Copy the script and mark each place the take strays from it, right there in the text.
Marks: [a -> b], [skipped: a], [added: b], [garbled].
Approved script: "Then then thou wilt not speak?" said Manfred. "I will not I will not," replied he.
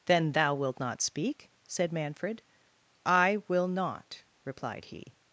"Then [skipped: then] thou wilt not speak?" said Manfred. "I will not [skipped: I will not,"] replied he.